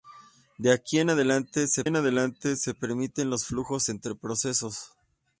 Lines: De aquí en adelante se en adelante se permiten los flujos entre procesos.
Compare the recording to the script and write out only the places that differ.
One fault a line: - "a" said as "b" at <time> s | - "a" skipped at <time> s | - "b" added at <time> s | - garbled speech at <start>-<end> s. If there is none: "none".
none